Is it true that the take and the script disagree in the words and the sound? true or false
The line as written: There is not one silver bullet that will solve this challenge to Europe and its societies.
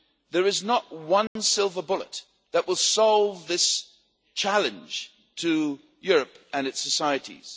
true